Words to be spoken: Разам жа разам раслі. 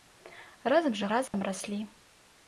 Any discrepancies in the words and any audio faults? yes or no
yes